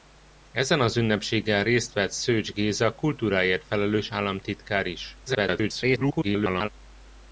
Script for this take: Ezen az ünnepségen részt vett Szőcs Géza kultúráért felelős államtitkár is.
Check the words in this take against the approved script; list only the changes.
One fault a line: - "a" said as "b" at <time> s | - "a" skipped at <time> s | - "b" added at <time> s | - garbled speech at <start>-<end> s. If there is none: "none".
- garbled speech at 5.3-6.7 s